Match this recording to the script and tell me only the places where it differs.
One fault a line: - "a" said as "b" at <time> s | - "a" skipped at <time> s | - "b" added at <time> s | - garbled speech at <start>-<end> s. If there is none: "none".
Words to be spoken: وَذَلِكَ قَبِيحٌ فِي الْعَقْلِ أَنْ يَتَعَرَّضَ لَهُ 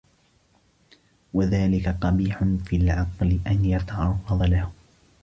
none